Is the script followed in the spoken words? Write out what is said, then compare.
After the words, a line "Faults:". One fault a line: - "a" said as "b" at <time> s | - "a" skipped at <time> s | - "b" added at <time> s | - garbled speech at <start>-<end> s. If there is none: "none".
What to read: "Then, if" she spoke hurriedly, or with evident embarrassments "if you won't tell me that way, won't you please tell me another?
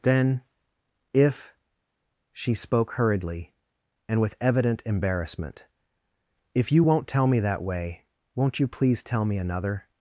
"Then, if" she spoke hurriedly, and with evident embarrassment "if you won't tell me that way, won't you please tell me another?
Faults:
- "or" said as "and" at 4.1 s
- "embarrassments" said as "embarrassment" at 4.9 s